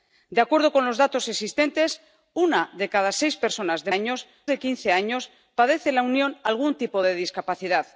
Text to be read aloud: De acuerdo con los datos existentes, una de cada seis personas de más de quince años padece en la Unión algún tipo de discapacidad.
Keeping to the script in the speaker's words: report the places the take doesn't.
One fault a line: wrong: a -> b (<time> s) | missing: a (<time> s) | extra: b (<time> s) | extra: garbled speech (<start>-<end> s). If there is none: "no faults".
wrong: más -> años (3.9 s)